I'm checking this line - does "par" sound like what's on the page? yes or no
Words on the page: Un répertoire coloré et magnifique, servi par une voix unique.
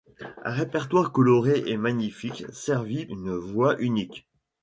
no